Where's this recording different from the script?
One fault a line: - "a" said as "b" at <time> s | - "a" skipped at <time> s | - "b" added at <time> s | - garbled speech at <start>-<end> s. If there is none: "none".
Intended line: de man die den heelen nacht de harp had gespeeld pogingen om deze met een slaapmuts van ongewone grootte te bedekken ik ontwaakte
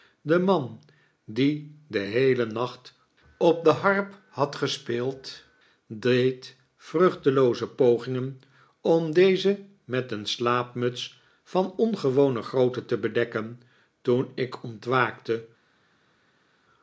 - "op" added at 3.4 s
- "deed vruchtelooze" added at 5.9 s
- "toen" added at 14.0 s